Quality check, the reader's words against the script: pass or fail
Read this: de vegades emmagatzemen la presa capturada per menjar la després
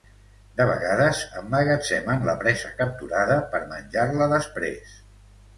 pass